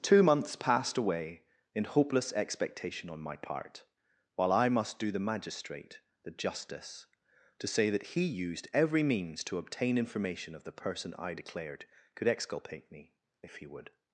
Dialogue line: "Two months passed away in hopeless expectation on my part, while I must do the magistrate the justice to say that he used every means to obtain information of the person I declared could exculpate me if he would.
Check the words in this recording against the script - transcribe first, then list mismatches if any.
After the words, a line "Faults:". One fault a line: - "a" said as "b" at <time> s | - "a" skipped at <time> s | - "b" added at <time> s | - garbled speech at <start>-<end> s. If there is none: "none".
"Two months passed away in hopeless expectation on my part, while I must do the magistrate the justice to say that he used every means to obtain information of the person I declared could exculpate me if he would.
Faults:
none